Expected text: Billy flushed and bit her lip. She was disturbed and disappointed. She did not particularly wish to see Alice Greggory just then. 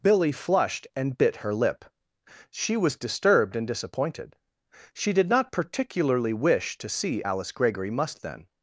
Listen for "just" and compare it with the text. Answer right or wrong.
wrong